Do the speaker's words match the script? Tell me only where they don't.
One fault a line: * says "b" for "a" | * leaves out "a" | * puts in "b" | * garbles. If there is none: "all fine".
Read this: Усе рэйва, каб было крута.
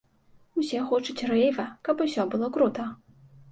* puts in "хочуць"
* puts in "усё"